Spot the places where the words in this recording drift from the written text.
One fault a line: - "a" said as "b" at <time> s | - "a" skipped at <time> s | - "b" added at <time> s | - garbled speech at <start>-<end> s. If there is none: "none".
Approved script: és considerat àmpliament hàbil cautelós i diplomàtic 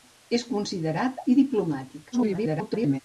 - "àmpliament hàbil cautelós" skipped at 1.2 s
- garbled speech at 2.1-3.0 s